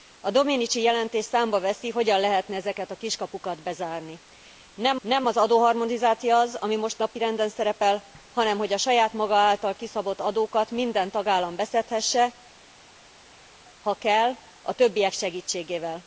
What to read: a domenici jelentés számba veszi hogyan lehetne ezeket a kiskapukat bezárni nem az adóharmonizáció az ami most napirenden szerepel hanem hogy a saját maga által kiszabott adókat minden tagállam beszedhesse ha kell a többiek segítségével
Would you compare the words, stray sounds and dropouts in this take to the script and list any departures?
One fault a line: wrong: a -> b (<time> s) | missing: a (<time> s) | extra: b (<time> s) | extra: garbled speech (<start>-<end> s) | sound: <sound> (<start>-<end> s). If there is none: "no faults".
extra: nem (5.0 s)